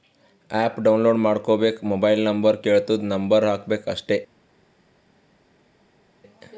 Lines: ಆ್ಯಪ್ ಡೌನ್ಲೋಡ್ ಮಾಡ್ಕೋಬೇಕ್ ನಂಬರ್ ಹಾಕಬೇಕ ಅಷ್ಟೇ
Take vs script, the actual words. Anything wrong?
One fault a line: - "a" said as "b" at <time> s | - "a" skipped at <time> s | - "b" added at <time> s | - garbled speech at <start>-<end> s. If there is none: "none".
- "ಮೊಬೈಲ್ ನಂಬರ್ ಕೆಳ್ತುದ್" added at 1.8 s